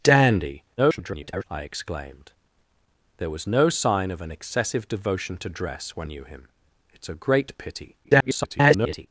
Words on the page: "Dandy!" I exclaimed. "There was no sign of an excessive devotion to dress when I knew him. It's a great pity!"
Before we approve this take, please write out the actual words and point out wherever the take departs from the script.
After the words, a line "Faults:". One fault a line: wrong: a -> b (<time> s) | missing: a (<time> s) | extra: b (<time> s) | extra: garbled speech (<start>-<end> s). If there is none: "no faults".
"Dandy!" [garbled] I exclaimed. "There was no sign of an excessive devotion to dress when knew him. It's a great pity!" [garbled]
Faults:
extra: garbled speech (0.8-1.4 s)
missing: I (6.1 s)
extra: garbled speech (8.0-9.1 s)